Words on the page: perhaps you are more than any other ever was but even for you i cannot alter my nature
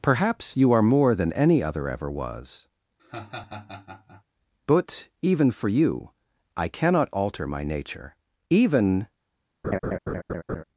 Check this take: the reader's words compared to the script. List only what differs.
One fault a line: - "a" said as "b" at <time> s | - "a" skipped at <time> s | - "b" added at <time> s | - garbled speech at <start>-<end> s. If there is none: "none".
- "even" added at 8.5 s